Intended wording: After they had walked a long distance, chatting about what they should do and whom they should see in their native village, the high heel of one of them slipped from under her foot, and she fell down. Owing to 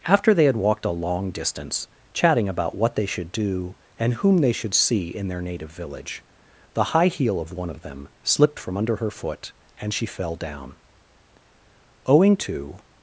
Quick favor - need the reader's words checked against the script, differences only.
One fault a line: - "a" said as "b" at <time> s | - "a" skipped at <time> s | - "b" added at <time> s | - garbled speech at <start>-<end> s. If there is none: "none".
none